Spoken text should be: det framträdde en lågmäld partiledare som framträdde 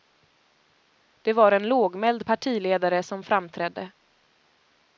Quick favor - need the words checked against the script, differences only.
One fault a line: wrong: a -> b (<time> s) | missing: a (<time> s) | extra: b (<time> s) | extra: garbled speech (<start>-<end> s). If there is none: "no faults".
wrong: framträdde -> var (1.3 s)